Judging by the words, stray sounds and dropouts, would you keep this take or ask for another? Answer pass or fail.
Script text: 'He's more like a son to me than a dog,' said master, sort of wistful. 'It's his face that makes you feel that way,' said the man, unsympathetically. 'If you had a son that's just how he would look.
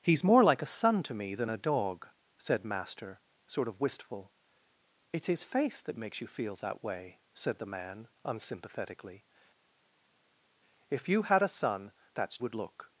fail